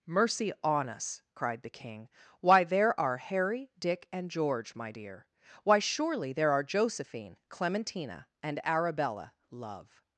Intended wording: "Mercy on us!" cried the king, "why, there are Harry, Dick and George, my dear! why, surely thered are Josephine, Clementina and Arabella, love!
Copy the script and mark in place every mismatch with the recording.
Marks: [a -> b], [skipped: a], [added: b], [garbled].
"Mercy on us!" cried the king, "why, there are Harry, Dick and George, my dear! why, surely [thered -> there] are Josephine, Clementina and Arabella, love!